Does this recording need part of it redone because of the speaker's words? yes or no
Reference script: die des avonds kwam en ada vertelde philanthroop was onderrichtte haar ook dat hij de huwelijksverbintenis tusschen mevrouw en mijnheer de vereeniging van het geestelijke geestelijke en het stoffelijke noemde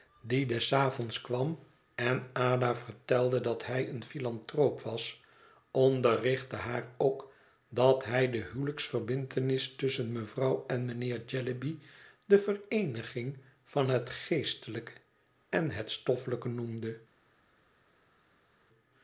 yes